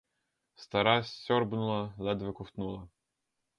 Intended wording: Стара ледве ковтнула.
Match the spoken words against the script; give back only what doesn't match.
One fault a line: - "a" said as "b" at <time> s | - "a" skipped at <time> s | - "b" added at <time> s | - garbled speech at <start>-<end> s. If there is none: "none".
- "сьорбнула" added at 1.0 s